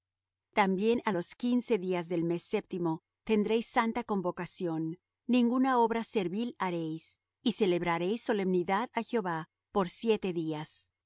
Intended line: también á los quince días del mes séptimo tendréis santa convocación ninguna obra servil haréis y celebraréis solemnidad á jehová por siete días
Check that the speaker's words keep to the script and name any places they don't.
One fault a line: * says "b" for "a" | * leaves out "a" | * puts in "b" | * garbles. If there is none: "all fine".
all fine